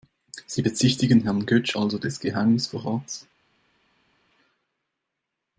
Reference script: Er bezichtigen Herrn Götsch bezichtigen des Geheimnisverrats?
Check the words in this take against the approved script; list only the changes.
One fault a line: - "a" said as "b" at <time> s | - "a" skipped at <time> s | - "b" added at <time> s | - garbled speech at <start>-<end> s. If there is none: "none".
- "Er" said as "Sie" at 0.5 s
- "bezichtigen" said as "also" at 1.7 s